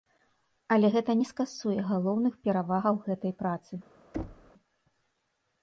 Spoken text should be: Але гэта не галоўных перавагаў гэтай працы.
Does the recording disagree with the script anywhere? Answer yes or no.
yes